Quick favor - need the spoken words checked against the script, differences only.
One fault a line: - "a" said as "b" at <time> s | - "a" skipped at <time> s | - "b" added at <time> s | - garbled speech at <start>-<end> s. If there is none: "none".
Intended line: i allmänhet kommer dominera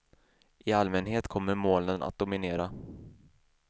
- "molnen att" added at 1.5 s